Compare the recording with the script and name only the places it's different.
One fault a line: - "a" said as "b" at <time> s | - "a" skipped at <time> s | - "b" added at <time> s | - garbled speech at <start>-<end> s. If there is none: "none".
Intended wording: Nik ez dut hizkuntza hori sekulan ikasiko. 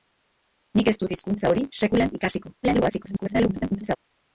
- garbled speech at 2.6-4.0 s